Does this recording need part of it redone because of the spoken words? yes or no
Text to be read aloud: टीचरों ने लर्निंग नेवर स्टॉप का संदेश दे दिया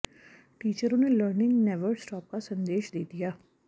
no